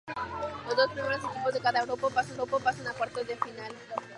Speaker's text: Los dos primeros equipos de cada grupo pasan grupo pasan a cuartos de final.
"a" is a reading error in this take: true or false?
false